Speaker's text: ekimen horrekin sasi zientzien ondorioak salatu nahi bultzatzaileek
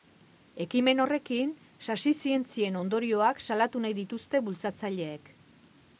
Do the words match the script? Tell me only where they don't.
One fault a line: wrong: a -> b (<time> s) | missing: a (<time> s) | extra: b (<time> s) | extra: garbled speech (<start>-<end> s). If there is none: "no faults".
extra: dituzte (4.0 s)